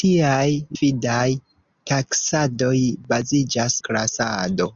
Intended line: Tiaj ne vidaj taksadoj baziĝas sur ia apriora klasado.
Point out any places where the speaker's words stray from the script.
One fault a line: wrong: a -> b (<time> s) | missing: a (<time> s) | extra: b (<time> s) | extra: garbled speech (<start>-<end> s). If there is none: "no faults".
missing: ne (0.5 s)
missing: sur ia apriora (3.8 s)